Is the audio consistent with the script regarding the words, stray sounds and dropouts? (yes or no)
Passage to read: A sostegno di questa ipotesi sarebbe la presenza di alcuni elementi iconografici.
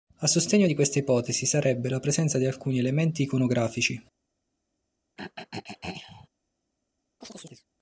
no